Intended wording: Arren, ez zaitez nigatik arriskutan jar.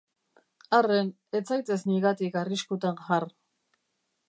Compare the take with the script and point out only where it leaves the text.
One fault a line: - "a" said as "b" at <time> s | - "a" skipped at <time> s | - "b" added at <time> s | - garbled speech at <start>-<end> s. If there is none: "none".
none